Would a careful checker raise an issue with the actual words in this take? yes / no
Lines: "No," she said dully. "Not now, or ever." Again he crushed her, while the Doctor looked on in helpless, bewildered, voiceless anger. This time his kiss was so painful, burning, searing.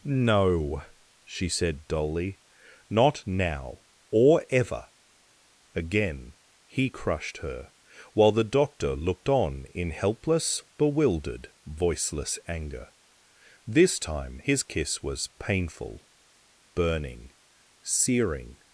yes